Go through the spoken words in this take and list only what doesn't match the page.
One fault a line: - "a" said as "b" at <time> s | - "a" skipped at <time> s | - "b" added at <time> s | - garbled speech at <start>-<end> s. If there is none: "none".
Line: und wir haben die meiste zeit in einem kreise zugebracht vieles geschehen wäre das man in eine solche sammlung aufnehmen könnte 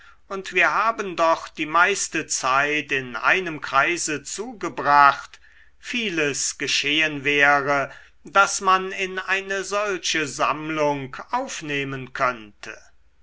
- "doch" added at 1.2 s